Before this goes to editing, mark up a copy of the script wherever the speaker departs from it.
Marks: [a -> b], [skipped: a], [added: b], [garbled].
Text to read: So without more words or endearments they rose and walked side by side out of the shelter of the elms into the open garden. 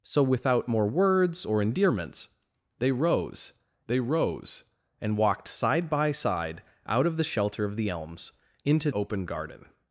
So without more words or endearments they rose [added: they rose] and walked side by side out of the shelter of the elms into [skipped: the] open garden.